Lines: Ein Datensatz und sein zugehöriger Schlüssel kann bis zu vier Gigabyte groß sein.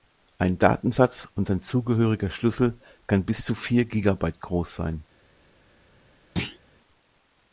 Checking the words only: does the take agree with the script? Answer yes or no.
yes